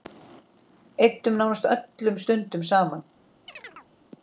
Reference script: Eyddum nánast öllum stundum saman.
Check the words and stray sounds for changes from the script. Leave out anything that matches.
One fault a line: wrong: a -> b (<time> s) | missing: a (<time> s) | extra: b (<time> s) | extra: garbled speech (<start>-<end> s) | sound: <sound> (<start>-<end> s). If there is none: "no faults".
sound: chirp (3.5-3.9 s)